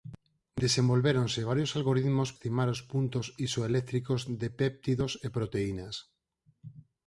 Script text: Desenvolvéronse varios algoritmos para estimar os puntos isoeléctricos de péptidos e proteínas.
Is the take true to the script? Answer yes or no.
no